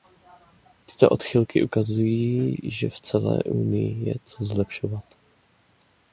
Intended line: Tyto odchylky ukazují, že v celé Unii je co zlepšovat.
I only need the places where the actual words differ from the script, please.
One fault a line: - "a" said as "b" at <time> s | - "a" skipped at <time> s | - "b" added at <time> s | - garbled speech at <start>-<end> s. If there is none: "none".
none